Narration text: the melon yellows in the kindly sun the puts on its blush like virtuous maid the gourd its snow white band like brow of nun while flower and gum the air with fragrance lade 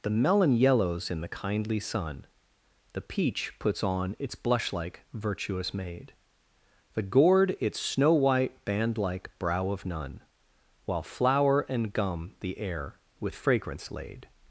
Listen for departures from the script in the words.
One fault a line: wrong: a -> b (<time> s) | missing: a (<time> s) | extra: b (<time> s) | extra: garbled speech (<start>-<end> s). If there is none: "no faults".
extra: peach (3.0 s)